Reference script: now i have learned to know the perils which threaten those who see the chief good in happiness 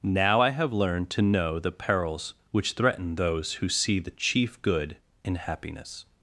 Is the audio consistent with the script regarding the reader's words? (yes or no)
yes